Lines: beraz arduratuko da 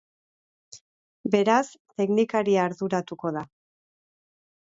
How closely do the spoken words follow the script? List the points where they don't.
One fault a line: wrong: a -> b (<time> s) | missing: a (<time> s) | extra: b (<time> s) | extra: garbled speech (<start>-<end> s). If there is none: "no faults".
extra: teknikaria (2.0 s)